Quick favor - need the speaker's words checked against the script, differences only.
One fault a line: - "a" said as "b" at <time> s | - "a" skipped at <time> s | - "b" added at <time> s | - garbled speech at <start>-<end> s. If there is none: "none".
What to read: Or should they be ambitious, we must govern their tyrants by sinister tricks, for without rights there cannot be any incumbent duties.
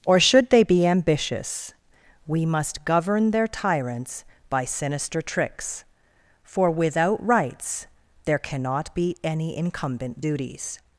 none